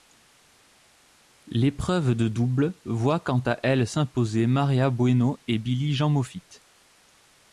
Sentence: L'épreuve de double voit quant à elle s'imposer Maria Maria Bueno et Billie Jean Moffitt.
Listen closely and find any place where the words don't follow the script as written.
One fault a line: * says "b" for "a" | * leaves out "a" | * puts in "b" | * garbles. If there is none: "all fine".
* leaves out "Maria"